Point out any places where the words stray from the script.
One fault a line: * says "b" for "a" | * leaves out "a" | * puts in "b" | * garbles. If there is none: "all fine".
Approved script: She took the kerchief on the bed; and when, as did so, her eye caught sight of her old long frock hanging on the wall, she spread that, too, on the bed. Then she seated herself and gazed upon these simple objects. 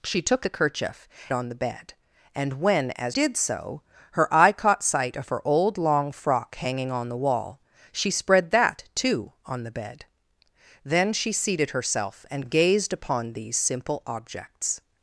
all fine